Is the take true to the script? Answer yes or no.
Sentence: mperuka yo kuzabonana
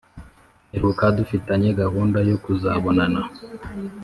no